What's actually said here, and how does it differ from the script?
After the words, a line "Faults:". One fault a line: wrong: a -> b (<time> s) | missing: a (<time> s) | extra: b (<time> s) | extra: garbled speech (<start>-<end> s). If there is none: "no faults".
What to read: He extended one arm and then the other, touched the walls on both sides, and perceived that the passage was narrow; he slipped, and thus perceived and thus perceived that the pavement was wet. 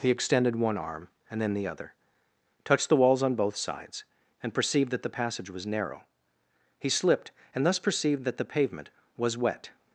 He extended one arm and then the other, touched the walls on both sides, and perceived that the passage was narrow; he slipped, and thus perceived that the pavement was wet.
Faults:
missing: and thus perceived (8.2 s)